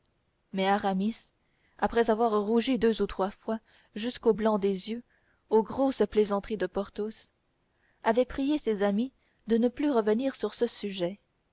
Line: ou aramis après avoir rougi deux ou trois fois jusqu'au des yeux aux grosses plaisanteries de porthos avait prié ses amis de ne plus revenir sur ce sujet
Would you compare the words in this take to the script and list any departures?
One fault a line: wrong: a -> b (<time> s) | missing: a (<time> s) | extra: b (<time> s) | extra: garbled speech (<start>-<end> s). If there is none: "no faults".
wrong: ou -> mais (0.5 s)
extra: blanc (4.3 s)